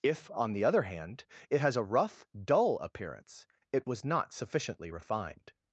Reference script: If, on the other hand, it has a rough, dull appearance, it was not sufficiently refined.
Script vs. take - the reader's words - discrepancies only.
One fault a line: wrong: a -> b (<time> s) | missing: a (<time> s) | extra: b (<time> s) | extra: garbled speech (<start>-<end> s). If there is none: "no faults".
no faults